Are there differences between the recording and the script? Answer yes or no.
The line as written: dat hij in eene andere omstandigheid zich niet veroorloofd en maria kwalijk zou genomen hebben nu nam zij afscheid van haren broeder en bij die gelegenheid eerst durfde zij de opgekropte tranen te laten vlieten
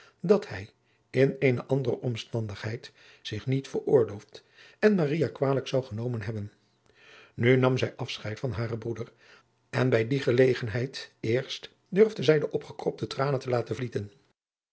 no